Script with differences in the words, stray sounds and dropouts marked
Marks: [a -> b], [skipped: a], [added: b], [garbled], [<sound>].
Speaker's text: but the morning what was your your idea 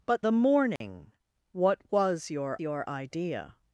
but the morning [dropout] what was your your idea